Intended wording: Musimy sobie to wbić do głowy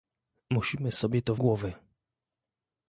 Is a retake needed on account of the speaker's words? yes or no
yes